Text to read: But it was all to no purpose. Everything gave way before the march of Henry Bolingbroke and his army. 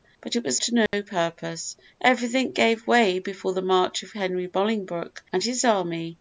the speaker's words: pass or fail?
fail